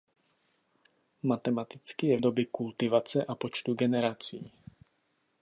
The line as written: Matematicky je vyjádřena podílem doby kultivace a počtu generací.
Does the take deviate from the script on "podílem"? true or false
true